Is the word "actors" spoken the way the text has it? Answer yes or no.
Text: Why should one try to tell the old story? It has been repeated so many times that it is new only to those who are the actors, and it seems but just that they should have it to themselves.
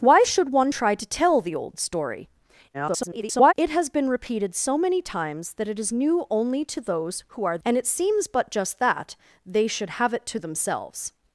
no